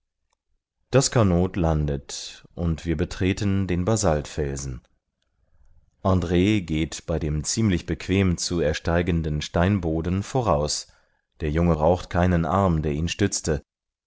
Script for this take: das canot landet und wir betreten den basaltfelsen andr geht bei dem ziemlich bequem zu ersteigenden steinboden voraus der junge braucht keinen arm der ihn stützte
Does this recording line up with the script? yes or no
yes